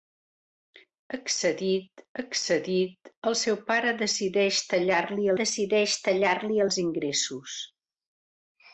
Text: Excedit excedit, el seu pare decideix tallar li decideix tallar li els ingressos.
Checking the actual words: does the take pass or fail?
pass